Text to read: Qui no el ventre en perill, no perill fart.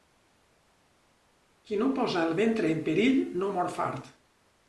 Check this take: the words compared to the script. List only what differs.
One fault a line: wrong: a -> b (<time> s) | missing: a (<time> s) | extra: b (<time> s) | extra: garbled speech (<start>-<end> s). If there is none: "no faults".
extra: posa (2.0 s)
wrong: perill -> mor (3.6 s)